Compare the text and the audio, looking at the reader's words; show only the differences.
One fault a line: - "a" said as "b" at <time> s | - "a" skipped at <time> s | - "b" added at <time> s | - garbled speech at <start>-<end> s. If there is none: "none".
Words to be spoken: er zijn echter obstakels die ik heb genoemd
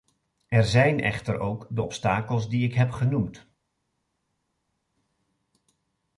- "ook de" added at 1.4 s